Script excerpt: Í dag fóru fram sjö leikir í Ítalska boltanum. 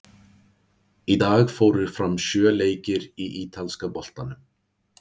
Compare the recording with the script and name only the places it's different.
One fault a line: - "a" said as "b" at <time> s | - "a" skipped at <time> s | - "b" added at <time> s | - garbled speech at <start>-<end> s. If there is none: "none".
none